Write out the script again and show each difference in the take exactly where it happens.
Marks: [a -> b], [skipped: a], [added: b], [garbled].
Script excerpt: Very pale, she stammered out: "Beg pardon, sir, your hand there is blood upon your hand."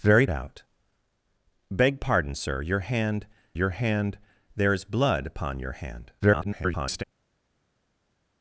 Very [skipped: pale, she stammered] out: "Beg pardon, sir, your hand [added: your hand] there is blood upon your hand." [garbled]